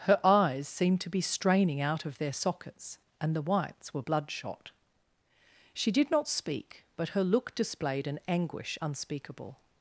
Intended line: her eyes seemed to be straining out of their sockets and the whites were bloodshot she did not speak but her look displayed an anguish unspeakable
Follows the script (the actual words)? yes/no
yes